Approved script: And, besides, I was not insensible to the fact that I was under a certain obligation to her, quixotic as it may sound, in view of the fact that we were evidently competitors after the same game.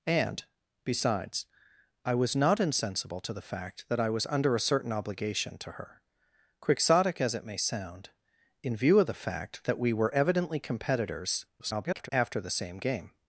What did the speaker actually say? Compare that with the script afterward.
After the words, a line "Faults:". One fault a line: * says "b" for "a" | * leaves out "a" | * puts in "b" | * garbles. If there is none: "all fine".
And, besides, I was not insensible to the fact that I was under a certain obligation to her, quixotic as it may sound, in view of the fact that we were evidently competitors [garbled] after the same game.
Faults:
* garbles